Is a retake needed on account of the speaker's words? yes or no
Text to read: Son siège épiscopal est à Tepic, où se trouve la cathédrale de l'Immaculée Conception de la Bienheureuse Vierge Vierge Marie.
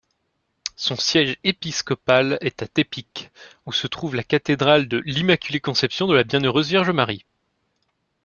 yes